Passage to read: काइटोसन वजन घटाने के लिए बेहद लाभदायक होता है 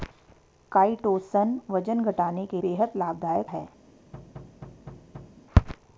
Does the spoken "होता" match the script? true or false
false